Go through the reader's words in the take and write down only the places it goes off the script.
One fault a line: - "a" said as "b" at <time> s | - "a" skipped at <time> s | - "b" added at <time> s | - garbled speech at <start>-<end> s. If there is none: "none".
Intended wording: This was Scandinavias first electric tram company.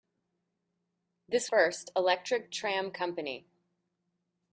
- "was Scandinavias" skipped at 1.5 s